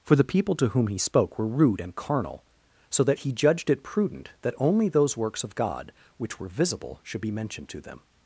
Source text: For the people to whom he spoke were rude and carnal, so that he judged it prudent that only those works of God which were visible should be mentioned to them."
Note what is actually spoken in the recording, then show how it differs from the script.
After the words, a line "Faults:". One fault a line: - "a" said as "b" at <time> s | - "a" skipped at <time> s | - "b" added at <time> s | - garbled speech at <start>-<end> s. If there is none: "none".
For the people to whom he spoke were rude and carnal, so that he judged it prudent that only those works of God which were visible should be mentioned to them."
Faults:
none